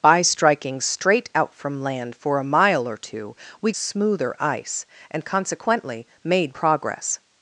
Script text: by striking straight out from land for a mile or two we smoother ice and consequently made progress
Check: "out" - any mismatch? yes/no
no